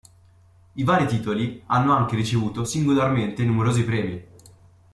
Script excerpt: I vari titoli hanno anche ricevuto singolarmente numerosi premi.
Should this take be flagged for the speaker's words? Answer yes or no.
no